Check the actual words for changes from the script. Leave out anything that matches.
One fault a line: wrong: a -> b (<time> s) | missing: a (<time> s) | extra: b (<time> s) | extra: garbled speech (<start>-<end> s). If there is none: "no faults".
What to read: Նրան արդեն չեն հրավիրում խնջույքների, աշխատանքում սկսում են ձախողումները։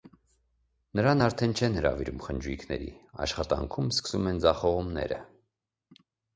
no faults